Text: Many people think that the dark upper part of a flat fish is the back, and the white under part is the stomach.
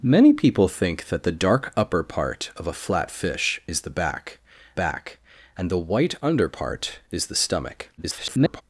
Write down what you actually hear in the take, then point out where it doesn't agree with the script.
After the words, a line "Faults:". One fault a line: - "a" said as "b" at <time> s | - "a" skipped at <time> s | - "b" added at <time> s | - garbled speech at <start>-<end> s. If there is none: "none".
Many people think that the dark upper part of a flat fish is the back back, and the white under part is the stomach. [garbled]
Faults:
- "back" added at 4.7 s
- garbled speech at 8.0-8.6 s